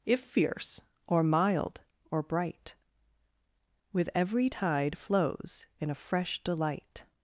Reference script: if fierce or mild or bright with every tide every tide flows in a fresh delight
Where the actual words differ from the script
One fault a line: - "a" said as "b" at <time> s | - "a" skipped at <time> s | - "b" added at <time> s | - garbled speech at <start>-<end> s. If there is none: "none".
- "every tide" skipped at 5.0 s